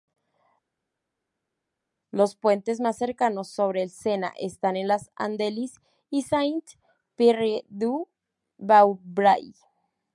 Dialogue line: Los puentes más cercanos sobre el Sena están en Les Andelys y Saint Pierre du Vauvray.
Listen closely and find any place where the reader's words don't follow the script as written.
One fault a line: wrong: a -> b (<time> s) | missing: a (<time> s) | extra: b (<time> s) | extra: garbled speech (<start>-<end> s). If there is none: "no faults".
no faults